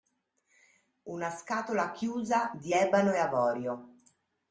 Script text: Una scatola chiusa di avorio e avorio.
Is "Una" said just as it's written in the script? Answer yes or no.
yes